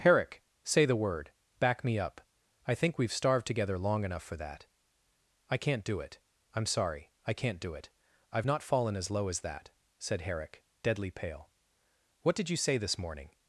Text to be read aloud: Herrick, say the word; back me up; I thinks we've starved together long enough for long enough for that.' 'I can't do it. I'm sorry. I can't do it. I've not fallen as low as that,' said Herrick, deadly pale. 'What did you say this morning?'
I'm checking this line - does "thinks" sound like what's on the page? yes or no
no